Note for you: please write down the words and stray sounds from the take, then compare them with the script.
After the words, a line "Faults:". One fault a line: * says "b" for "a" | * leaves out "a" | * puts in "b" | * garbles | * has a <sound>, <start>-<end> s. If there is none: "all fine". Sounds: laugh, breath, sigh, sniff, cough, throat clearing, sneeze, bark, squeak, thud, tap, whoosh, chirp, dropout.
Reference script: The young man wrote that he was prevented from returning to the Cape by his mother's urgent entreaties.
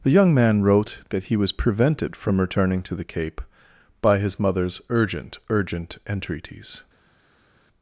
The young man wrote that he was prevented from returning to the Cape by his mother's urgent urgent entreaties.
Faults:
* puts in "urgent"